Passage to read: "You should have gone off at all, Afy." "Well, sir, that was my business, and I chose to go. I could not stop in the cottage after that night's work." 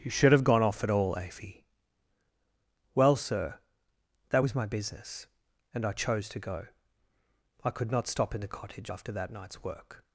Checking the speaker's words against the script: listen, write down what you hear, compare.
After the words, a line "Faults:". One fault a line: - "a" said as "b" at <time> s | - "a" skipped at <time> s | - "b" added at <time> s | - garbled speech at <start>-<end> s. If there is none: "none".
"You should have gone off at all, Afy." "Well, sir, that was my business, and I chose to go. I could not stop in the cottage after that night's work."
Faults:
none